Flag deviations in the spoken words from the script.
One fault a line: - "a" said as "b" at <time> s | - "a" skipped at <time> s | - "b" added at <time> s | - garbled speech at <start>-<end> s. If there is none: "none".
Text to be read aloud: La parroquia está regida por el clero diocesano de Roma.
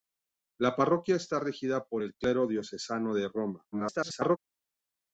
- garbled speech at 3.7-4.4 s